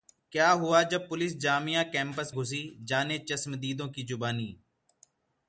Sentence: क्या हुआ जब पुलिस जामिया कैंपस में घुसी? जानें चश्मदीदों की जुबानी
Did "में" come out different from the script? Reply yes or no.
yes